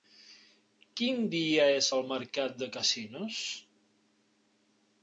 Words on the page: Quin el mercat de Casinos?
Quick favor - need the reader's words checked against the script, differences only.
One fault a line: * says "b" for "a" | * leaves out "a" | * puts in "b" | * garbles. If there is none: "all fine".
* puts in "dia és"